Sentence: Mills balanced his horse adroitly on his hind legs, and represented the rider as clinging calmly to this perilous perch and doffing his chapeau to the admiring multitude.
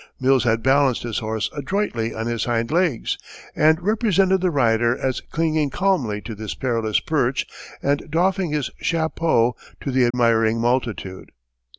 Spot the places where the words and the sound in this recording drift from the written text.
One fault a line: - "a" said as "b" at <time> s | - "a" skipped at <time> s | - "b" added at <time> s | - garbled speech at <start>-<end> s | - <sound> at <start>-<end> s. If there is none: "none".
- "had" added at 0.5 s
- dropout at 10.1-10.1 s